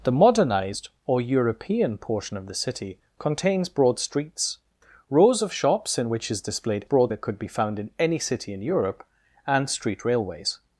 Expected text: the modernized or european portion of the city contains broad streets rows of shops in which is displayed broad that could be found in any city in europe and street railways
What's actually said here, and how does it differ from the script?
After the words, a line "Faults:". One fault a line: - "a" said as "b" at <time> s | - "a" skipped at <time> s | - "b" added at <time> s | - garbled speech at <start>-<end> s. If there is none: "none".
the modernized or european portion of the city contains broad streets rows of shops in which is displayed broad that could be found in any city in europe and street railways
Faults:
none